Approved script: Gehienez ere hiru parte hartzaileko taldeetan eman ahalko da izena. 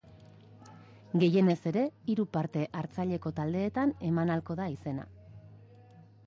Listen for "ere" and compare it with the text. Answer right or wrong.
right